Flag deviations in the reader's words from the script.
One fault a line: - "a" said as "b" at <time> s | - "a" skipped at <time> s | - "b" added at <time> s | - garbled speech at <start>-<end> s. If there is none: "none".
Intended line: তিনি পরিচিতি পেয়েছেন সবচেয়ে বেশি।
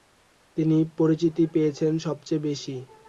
none